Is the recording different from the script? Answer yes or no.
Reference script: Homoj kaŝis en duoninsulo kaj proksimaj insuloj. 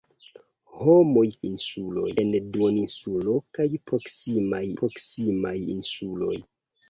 yes